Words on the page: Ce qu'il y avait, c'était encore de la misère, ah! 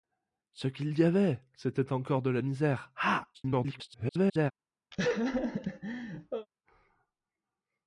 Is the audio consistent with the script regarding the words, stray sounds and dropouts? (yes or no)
no